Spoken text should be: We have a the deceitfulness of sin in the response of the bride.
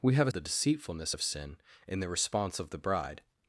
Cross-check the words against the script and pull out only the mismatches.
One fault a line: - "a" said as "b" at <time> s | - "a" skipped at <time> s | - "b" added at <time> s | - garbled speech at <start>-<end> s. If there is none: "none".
none